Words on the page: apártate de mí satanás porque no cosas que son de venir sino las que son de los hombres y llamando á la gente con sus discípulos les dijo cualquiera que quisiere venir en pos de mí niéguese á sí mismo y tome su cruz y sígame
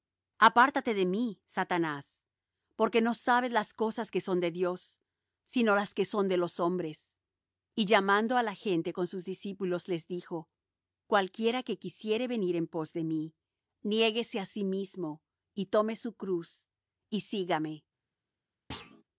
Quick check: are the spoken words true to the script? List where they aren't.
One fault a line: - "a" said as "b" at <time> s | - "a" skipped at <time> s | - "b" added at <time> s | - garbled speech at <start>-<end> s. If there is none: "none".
- "sabes las" added at 3.1 s
- "venir" said as "dios" at 4.5 s